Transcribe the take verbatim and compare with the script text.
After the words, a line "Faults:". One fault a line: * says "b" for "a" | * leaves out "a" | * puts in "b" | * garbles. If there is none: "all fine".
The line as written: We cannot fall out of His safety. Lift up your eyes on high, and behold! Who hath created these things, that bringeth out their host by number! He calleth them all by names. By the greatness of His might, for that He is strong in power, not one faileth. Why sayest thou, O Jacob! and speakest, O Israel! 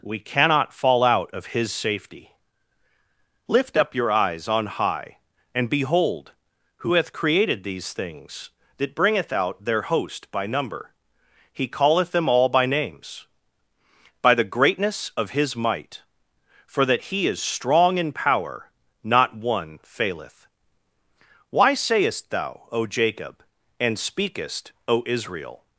We cannot fall out of His safety. Lift up your eyes on high, and behold! Who hath created these things, that bringeth out their host by number! He calleth them all by names. By the greatness of His might, for that He is strong in power, not one faileth. Why sayest thou, O Jacob! and speakest, O Israel!
Faults:
all fine